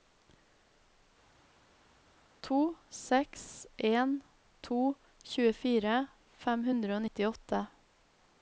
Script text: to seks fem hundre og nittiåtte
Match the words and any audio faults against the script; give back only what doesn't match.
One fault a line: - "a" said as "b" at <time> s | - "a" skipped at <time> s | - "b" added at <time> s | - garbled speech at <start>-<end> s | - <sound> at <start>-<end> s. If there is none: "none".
- "en to tjuefire" added at 3.9 s